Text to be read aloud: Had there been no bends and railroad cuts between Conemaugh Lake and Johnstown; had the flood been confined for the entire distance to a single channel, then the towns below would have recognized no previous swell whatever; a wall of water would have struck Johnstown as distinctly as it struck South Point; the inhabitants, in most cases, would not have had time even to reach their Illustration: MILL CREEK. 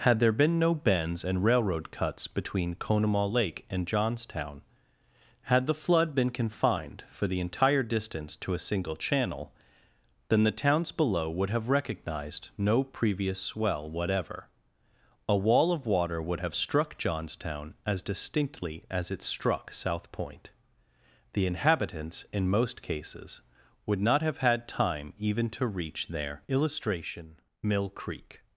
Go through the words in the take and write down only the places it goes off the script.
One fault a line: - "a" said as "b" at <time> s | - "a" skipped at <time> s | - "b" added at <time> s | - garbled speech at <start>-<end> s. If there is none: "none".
none